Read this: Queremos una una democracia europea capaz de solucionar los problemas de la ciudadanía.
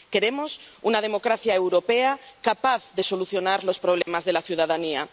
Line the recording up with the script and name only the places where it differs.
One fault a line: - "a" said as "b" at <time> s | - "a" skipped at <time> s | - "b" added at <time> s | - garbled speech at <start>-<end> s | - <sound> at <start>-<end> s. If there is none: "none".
- "una" skipped at 1.0 s
- dropout at 4.0-4.1 s